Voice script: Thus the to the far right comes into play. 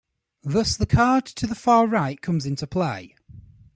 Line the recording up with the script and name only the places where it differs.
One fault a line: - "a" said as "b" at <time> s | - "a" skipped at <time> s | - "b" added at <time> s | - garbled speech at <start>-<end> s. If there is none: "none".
- "card" added at 0.8 s